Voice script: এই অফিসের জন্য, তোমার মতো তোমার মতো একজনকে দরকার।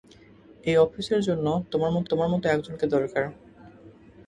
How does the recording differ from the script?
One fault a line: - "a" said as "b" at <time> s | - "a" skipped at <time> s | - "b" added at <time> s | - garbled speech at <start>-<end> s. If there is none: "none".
none